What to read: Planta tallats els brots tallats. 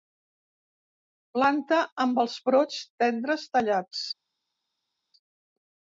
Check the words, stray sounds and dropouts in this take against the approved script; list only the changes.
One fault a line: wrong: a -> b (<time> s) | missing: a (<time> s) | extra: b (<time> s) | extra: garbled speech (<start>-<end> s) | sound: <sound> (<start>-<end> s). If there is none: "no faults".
wrong: tallats -> amb (2.1 s)
extra: tendres (3.0 s)